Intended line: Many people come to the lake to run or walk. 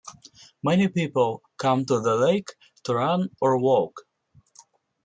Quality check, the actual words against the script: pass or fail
pass